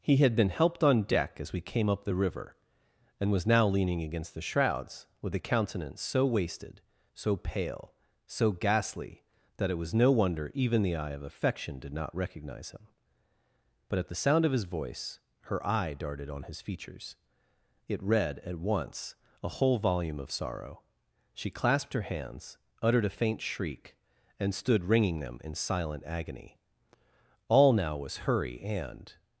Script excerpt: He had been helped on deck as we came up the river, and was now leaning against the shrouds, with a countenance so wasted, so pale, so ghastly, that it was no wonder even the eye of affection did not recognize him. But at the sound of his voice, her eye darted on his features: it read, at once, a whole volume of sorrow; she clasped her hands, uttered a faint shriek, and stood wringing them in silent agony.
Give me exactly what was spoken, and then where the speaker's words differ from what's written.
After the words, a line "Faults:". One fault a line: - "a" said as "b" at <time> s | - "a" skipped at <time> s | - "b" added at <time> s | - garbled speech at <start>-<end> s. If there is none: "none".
He had been helped on deck as we came up the river, and was now leaning against the shrouds, with a countenance so wasted, so pale, so ghastly, that it was no wonder even the eye of affection did not recognize him. But at the sound of his voice, her eye darted on his features: it read, at once, a whole volume of sorrow; she clasped her hands, uttered a faint shriek, and stood wringing them in silent agony. All now was hurry and
Faults:
- "All now was hurry and" added at 27.5 s